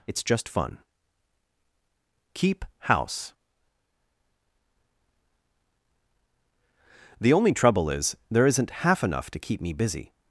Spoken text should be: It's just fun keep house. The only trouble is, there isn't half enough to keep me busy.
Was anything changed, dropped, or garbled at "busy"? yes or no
no